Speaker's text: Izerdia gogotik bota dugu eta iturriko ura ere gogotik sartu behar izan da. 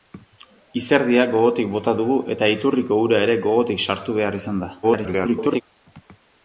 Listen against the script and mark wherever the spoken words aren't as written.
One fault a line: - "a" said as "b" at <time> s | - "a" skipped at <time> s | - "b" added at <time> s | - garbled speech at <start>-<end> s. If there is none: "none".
- garbled speech at 4.8-5.6 s